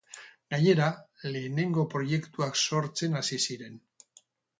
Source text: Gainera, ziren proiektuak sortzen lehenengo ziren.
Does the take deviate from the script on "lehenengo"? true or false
true